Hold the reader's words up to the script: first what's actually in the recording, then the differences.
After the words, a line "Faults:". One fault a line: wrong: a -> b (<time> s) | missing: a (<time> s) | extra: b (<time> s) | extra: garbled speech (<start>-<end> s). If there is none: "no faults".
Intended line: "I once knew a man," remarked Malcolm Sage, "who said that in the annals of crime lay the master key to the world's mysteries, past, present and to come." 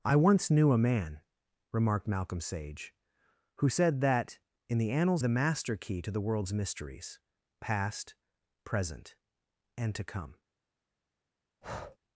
"I once knew a man," remarked Malcolm Sage, "who said that in the annals the master key to the world's mysteries, past, present and to come."
Faults:
missing: of crime lay (5.2 s)